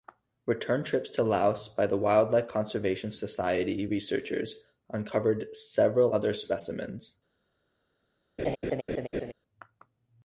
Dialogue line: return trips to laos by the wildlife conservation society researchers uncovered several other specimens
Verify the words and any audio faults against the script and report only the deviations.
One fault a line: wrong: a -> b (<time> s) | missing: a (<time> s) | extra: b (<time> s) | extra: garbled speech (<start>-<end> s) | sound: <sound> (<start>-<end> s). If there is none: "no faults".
sound: laugh (8.4-9.3 s)